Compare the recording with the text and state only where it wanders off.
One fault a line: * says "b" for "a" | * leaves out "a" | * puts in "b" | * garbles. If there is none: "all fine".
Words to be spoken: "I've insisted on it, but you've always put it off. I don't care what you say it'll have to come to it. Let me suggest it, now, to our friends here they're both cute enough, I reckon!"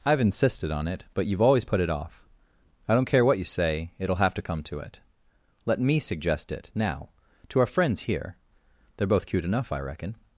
all fine